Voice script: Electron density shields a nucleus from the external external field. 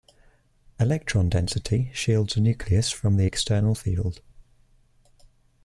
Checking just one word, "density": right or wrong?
right